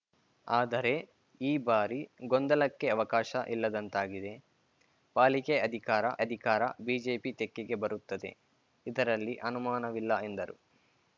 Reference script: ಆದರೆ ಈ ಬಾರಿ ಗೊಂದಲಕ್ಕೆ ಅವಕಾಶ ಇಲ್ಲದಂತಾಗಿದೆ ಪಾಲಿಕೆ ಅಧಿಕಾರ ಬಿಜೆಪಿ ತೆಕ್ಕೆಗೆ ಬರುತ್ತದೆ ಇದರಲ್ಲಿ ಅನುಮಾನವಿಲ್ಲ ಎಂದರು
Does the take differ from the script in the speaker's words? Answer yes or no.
yes